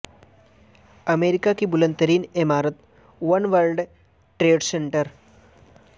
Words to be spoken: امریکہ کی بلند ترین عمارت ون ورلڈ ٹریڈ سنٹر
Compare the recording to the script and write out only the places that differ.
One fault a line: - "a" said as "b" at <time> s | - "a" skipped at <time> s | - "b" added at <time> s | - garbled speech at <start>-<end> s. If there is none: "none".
none